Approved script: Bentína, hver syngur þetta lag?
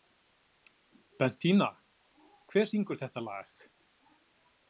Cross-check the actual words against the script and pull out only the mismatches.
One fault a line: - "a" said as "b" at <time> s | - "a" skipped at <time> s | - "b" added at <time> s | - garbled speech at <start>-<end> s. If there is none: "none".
none